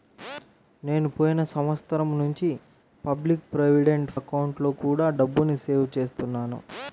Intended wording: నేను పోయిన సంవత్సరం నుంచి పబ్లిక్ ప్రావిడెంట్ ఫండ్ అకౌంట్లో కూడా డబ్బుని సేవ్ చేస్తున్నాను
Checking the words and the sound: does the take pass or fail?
fail